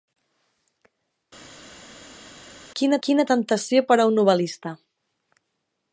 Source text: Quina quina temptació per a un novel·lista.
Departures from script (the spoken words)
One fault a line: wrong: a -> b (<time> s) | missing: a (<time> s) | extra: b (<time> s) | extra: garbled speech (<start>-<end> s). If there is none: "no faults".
no faults